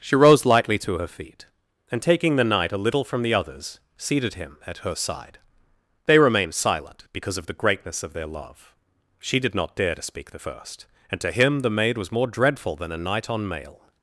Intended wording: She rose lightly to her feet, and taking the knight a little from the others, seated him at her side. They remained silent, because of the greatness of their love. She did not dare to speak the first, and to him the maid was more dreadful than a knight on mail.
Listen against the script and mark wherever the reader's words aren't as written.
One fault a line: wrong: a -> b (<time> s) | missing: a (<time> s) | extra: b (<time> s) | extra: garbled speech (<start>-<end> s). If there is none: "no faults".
no faults